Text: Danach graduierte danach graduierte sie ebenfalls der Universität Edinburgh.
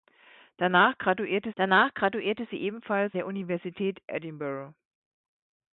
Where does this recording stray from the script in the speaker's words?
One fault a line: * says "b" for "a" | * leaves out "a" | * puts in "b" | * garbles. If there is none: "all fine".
all fine